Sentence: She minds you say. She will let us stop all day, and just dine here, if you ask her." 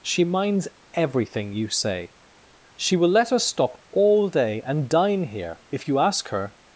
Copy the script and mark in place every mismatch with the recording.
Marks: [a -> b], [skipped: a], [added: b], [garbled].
She minds [added: everything] you say. She will let us stop all day, and [skipped: just] dine here, if you ask her."